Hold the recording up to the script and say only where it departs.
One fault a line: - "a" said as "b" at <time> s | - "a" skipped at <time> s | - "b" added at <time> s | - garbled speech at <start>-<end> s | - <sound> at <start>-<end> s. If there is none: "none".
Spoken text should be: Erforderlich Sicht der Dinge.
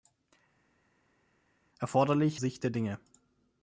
none